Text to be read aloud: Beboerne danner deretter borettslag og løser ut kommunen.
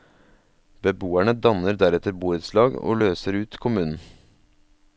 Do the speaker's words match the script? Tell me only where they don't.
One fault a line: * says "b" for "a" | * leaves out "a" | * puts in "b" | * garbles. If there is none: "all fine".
all fine